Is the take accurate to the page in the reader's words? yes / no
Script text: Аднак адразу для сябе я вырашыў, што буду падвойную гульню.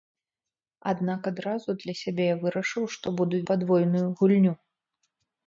yes